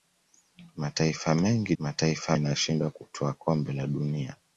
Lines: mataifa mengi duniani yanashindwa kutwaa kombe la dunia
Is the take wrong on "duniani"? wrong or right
wrong